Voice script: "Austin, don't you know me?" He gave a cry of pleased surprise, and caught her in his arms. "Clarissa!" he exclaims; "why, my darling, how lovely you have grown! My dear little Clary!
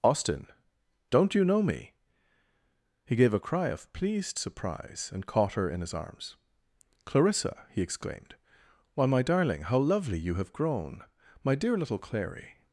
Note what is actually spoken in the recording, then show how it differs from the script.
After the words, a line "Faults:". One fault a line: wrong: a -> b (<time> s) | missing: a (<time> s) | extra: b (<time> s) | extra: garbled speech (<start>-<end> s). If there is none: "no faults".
"Austin, don't you know me?" He gave a cry of pleased surprise, and caught her in his arms. "Clarissa!" he exclaimed; "why, my darling, how lovely you have grown! My dear little Clary!
Faults:
wrong: exclaims -> exclaimed (7.8 s)